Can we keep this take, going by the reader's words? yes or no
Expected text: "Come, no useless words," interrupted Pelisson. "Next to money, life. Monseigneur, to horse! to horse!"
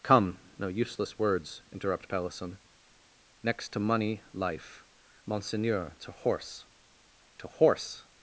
no